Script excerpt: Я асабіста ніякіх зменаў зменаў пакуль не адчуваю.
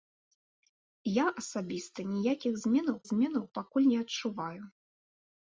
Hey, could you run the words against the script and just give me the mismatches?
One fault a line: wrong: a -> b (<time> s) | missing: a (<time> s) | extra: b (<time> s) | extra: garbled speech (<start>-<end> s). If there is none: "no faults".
no faults